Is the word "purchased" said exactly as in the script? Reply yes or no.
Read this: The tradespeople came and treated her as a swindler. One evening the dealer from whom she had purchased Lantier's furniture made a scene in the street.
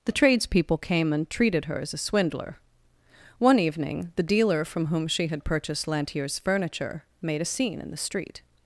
yes